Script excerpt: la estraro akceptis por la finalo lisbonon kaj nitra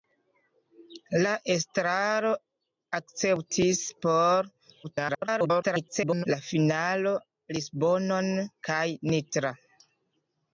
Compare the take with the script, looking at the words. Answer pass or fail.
fail